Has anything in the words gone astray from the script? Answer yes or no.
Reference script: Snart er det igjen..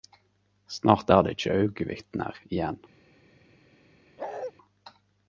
yes